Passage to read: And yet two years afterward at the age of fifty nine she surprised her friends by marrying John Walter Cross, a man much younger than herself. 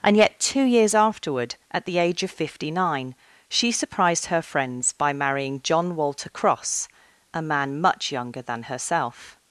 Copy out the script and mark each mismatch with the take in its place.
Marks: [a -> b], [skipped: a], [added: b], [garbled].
And yet two years afterward at the age of fifty nine she surprised her friends by marrying John Walter Cross, a man much younger than herself.